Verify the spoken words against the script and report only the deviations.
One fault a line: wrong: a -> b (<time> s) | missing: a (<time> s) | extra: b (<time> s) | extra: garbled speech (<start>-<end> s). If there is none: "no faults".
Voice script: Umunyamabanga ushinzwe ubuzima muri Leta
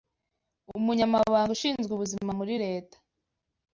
no faults